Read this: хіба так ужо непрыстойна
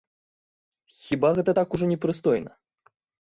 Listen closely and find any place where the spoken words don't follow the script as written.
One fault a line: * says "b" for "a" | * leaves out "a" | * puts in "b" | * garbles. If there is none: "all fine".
* puts in "гэта"